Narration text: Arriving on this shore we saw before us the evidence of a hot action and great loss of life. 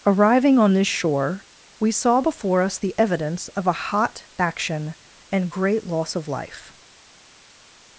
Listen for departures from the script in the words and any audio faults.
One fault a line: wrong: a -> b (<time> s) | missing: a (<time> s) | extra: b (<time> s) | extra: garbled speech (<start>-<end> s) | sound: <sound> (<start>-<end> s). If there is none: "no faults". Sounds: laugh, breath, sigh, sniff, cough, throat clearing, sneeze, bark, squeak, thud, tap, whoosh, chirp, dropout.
no faults